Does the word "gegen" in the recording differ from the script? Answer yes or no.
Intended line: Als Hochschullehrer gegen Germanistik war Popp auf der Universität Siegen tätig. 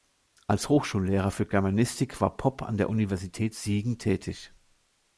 yes